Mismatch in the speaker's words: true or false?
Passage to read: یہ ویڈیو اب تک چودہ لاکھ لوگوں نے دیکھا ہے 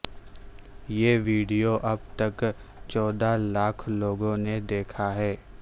false